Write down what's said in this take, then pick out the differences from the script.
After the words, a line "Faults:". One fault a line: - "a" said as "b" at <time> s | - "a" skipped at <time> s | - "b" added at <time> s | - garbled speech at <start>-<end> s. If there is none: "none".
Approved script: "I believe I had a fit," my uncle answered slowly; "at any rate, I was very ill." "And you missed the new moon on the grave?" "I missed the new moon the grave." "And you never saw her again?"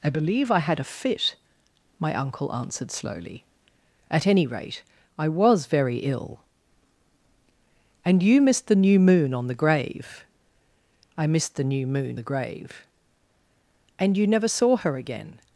"I believe I had a fit," my uncle answered slowly; "at any rate, I was very ill." "And you missed the new moon on the grave?" "I missed the new moon the grave." "And you never saw her again?"
Faults:
none